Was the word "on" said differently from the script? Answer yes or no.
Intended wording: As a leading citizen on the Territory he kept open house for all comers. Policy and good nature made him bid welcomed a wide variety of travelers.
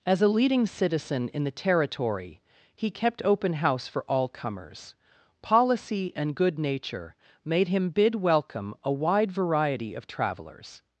yes